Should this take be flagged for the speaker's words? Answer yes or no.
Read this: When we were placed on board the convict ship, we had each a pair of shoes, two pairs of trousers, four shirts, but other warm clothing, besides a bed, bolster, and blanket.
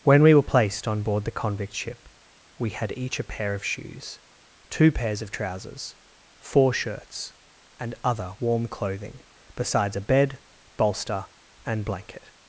yes